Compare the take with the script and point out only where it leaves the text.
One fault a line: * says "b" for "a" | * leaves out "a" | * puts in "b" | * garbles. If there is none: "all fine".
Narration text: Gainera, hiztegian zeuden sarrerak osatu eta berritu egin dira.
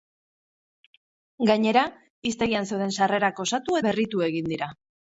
* leaves out "eta"